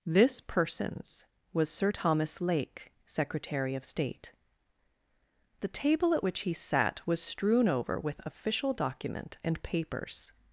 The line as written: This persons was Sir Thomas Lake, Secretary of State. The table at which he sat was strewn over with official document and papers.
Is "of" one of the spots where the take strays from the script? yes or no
no